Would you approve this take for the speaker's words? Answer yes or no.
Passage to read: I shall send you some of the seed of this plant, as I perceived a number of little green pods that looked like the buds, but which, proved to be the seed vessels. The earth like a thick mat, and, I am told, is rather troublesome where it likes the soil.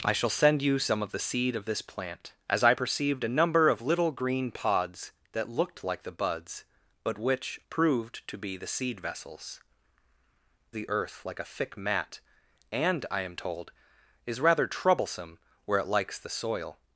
yes